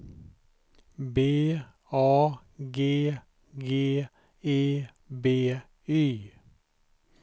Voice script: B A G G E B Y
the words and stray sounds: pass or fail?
pass